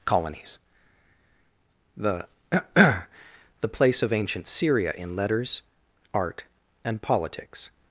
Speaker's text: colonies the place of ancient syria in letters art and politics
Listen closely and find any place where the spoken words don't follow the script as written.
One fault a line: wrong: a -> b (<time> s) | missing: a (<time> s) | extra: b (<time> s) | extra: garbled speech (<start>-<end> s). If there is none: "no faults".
extra: the (2.8 s)